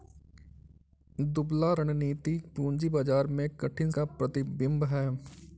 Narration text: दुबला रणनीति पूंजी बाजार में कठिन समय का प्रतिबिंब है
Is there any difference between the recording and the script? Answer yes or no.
yes